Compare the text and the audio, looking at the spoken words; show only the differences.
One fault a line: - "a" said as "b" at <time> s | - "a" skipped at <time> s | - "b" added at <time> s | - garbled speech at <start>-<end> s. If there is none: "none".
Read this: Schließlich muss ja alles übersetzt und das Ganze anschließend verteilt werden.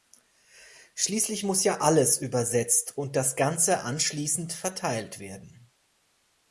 none